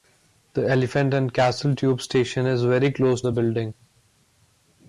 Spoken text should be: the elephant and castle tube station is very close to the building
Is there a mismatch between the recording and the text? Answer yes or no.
yes